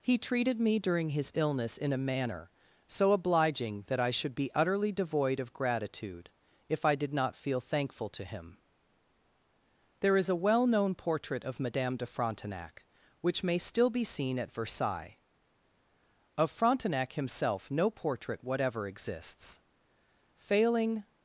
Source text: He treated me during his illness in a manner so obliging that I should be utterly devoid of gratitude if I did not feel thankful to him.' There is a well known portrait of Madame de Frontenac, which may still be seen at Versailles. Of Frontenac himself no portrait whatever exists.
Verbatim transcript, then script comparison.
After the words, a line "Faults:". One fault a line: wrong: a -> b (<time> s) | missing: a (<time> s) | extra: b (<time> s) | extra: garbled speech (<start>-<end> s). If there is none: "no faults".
He treated me during his illness in a manner so obliging that I should be utterly devoid of gratitude if I did not feel thankful to him.' There is a well known portrait of Madame de Frontenac, which may still be seen at Versailles. Of Frontenac himself no portrait whatever exists. Failing
Faults:
extra: Failing (20.3 s)